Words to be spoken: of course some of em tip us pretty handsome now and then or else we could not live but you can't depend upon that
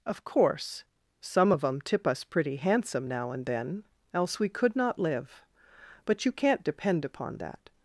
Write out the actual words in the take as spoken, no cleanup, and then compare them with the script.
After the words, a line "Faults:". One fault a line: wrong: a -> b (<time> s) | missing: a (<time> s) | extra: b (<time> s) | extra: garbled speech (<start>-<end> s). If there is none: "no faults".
of course some of em tip us pretty handsome now and then else we could not live but you can't depend upon that
Faults:
missing: or (3.8 s)